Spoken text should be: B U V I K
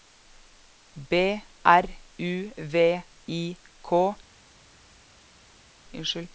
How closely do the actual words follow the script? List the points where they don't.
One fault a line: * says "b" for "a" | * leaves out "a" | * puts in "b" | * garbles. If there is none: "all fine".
* puts in "R"